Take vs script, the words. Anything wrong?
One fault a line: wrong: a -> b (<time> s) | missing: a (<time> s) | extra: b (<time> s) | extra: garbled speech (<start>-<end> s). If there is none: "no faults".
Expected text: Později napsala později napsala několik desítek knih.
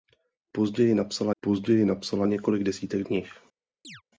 no faults